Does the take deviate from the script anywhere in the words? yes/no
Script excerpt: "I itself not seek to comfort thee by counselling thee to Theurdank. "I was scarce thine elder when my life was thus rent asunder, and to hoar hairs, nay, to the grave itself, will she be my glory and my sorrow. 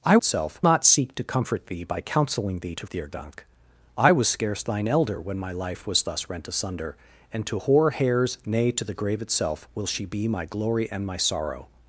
no